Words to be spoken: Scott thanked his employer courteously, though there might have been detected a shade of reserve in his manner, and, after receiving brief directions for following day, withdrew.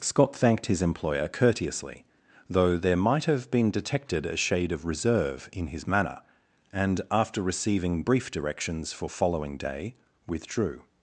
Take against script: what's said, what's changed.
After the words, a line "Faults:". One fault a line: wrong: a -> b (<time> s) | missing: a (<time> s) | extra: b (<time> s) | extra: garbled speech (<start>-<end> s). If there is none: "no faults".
Scott thanked his employer courteously, though there might have been detected a shade of reserve in his manner, and, after receiving brief directions for following day, withdrew.
Faults:
no faults